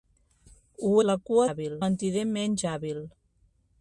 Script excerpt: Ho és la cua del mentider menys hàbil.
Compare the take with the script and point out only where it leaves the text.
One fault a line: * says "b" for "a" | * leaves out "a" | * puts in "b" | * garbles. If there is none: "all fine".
* leaves out "és"
* says "hàbil" for "del"